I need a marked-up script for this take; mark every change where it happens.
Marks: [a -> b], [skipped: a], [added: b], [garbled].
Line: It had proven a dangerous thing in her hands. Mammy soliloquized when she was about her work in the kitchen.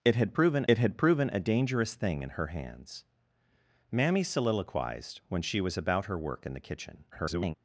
It had proven [added: it had proven] a dangerous thing in her hands. Mammy soliloquized when she was about her work in the kitchen. [garbled]